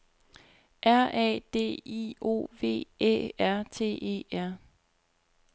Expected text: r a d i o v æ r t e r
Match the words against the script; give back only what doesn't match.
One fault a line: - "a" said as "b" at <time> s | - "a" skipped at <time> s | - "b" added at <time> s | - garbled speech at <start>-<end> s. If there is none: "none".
none